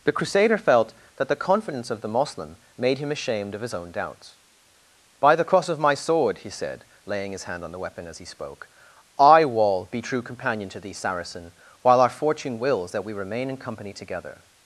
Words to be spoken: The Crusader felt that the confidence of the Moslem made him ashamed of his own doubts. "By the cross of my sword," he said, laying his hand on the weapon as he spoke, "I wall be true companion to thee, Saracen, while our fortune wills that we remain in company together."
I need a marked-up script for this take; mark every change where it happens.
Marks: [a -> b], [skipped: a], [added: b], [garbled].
The Crusader felt that the confidence of the Moslem made him ashamed of his own doubts. "By the cross of my sword," he said, laying his hand on the weapon as he spoke, "I wall be true companion to thee, Saracen, while our fortune wills that we remain in company together."